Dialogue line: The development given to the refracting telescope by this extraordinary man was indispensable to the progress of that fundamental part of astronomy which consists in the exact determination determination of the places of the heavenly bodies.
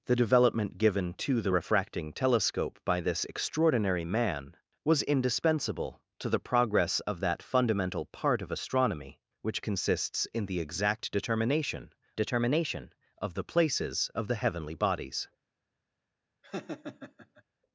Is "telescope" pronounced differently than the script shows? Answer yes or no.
no